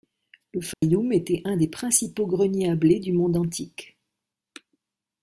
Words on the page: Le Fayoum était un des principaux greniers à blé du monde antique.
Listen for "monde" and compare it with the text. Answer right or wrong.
right